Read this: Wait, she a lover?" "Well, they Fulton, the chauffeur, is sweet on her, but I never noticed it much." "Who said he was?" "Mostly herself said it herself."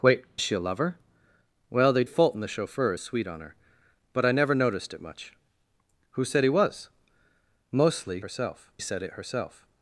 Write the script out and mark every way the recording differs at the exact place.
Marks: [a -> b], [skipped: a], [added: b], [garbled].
Wait, she a lover?" "Well, they Fulton, the chauffeur, is sweet on her, but I never noticed it much." "Who said he was?" "Mostly herself said it herself."